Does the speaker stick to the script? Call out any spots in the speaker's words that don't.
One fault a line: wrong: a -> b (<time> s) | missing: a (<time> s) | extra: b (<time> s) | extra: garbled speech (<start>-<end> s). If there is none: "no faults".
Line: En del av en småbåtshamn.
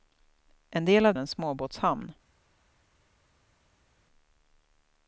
no faults